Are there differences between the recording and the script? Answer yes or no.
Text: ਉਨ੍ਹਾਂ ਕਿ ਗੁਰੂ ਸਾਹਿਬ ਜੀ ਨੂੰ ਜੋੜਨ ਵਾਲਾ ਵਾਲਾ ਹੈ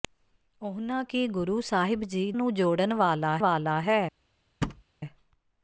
no